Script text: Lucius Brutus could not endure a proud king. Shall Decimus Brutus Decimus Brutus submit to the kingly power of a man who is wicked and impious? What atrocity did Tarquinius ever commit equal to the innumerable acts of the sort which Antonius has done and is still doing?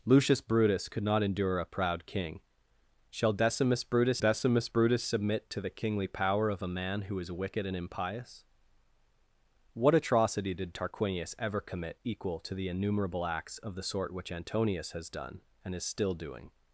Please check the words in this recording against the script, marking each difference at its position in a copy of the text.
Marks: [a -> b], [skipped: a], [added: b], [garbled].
Lucius Brutus could not endure a proud king. Shall Decimus Brutus Decimus Brutus submit to the kingly power of a man who is wicked and impious? What atrocity did Tarquinius ever commit equal to the innumerable acts of the sort which Antonius has done and is still doing?